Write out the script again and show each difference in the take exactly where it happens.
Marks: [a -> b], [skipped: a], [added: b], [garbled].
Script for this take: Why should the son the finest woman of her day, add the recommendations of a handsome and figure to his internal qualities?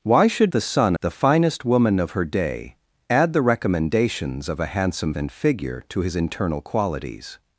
Why should the son the finest woman of her day, add the recommendations of a handsome and figure to his internal qualities?